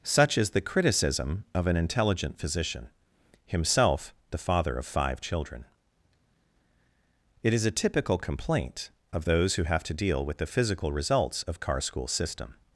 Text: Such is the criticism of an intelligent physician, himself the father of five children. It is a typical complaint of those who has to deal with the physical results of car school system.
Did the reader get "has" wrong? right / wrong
wrong